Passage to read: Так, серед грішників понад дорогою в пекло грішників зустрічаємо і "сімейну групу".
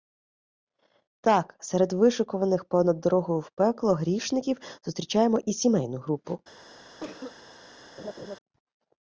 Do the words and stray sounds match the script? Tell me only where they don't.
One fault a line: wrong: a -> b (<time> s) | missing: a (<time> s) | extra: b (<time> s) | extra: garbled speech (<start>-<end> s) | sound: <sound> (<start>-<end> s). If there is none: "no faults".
wrong: грішників -> вишикуваних (1.9 s)
sound: cough (7.0-7.4 s)
sound: laugh (8.0-8.4 s)